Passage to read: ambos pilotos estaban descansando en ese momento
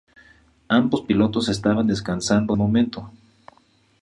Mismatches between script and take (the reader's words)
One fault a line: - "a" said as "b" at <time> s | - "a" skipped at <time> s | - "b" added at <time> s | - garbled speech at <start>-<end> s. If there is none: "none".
- "en ese" skipped at 2.6 s